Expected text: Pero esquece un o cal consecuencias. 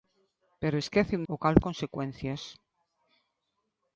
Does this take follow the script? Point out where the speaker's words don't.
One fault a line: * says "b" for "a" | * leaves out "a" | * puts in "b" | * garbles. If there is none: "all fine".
all fine